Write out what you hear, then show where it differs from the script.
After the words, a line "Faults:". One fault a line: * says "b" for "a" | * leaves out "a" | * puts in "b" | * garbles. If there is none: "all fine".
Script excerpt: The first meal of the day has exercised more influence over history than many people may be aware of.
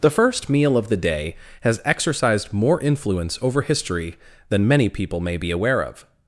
The first meal of the day has exercised more influence over history than many people may be aware of.
Faults:
all fine